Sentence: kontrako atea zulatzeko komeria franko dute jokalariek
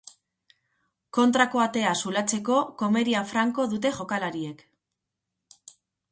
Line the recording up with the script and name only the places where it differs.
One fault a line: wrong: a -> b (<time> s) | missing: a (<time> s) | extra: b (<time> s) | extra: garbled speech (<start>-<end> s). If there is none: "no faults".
no faults